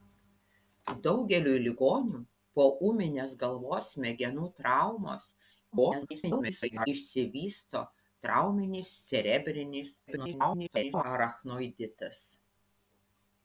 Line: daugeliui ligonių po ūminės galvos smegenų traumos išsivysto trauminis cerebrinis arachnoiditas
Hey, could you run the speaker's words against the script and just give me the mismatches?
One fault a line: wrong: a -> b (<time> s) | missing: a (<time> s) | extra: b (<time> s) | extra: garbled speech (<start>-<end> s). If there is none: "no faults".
extra: garbled speech (5.7-6.9 s)
extra: garbled speech (10.1-11.0 s)